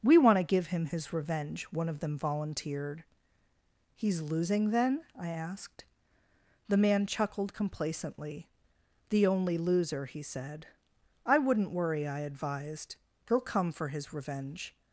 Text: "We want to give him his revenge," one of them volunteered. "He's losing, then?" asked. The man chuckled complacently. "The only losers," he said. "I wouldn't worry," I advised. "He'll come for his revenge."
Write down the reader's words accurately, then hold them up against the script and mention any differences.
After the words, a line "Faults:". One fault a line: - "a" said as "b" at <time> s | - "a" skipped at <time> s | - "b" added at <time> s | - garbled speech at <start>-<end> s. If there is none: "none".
"We want to give him his revenge," one of them volunteered. "He's losing, then?" I asked. The man chuckled complacently. "The only loser," he said. "I wouldn't worry," I advised. "He'll come for his revenge."
Faults:
- "I" added at 5.2 s
- "losers" said as "loser" at 9.6 s